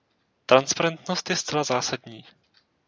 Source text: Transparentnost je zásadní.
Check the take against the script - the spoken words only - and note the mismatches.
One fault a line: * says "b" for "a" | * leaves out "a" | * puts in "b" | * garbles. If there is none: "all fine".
* puts in "zcela"